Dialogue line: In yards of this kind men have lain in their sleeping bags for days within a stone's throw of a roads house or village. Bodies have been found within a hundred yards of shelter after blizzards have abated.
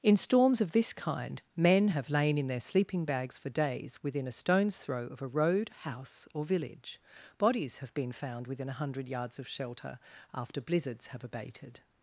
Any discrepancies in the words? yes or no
yes